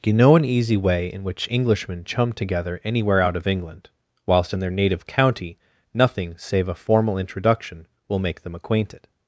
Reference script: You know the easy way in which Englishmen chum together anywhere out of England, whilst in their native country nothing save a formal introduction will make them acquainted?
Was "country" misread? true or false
true